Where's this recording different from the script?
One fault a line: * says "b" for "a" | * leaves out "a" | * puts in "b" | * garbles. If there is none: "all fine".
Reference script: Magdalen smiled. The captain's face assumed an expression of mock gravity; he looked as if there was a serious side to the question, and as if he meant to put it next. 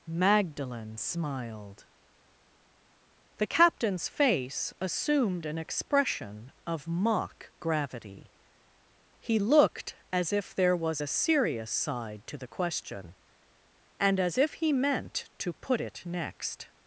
all fine